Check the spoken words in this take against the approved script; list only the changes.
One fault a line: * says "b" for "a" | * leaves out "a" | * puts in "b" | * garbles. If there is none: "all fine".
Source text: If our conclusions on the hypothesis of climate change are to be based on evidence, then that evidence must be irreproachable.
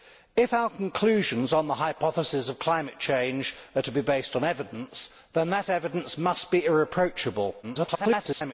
* garbles